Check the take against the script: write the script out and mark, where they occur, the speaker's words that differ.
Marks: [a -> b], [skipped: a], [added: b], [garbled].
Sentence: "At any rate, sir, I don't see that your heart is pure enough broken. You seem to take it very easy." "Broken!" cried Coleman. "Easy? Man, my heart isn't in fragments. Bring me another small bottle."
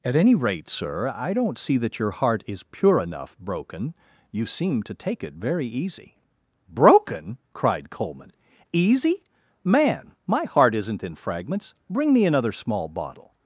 "At any rate, sir, I don't see that your heart is pure enough broken. You seem to take it very easy." "Broken!" cried Coleman. "Easy? Man, my heart isn't in fragments. Bring me another small bottle."